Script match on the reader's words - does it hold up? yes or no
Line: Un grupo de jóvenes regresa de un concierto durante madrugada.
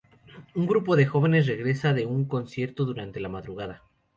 no